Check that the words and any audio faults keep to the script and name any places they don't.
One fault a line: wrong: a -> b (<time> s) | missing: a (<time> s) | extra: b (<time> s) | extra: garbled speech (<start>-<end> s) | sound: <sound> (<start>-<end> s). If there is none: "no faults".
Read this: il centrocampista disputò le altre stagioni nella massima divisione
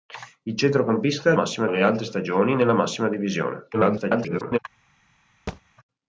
wrong: disputò -> massima (1.3 s)
extra: garbled speech (3.7-4.6 s)
sound: thud (5.5-5.6 s)